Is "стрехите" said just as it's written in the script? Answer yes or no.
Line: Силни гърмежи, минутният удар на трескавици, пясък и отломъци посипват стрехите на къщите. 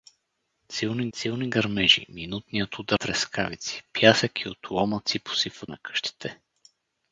no